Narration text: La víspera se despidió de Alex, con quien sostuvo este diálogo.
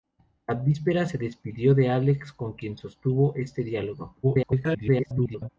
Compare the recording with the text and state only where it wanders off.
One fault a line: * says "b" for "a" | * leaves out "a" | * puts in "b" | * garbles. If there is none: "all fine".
* garbles